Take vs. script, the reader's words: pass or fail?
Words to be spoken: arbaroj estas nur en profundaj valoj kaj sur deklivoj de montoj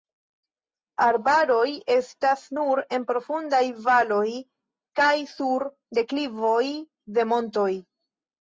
pass